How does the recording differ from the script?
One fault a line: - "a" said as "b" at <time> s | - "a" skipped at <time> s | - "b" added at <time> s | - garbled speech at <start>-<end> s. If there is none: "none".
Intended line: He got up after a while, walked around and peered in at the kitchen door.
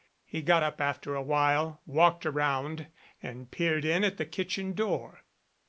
none